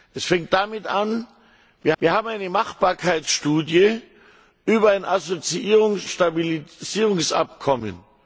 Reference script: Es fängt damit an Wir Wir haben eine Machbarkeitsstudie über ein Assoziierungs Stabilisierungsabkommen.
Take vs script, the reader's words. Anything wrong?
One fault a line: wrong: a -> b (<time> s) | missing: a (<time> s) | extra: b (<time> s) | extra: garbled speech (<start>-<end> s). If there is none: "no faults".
no faults